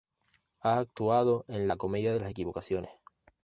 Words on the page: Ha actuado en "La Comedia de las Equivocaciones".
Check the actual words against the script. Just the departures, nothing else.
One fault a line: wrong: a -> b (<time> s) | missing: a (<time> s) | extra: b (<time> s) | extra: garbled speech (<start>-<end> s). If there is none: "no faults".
no faults